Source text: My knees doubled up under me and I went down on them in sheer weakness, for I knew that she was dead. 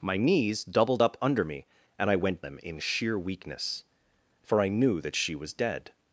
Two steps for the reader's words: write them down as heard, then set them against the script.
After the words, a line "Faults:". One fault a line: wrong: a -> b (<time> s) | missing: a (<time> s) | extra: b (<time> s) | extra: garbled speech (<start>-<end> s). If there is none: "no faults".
My knees doubled up under me and I went them in sheer weakness, for I knew that she was dead.
Faults:
missing: down on (2.4 s)